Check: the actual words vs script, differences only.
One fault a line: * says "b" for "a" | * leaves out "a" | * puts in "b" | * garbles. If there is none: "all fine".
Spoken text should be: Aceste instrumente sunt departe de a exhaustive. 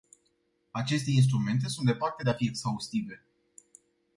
* puts in "fi"